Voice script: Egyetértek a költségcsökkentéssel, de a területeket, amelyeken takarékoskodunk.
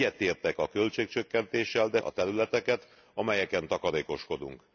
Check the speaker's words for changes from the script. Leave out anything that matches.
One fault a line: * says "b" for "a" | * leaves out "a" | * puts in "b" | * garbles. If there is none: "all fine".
all fine